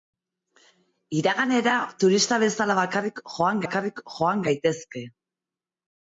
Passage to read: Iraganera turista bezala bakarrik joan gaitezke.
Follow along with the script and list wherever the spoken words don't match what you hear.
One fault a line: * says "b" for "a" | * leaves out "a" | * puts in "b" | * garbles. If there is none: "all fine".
* puts in "bakarrik joan"